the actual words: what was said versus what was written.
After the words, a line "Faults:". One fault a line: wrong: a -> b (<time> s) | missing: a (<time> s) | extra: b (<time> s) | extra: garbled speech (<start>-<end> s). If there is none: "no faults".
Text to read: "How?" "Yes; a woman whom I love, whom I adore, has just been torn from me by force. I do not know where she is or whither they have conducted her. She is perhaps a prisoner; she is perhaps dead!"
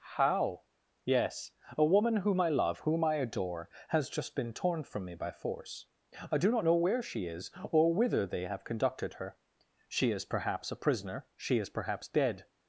"How?" "Yes; a woman whom I love, whom I adore, has just been torn from me by force. I do not know where she is or whither they have conducted her. She is perhaps a prisoner; she is perhaps dead!"
Faults:
no faults